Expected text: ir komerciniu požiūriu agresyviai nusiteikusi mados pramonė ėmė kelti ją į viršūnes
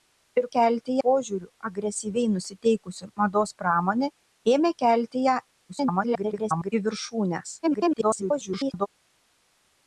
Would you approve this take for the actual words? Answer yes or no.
no